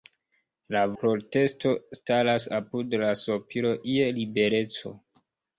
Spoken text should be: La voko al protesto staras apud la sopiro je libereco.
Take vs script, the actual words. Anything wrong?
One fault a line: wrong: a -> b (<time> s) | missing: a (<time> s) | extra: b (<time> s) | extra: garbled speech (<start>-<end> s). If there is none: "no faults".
missing: voko al (0.8 s)